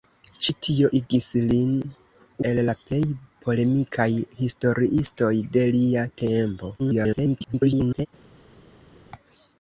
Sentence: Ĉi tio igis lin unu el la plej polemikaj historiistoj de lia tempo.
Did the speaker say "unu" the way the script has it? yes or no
no